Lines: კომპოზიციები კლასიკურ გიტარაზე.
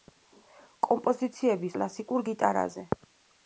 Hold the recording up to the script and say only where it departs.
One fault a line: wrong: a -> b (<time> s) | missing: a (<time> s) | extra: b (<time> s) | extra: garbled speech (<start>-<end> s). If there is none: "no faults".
no faults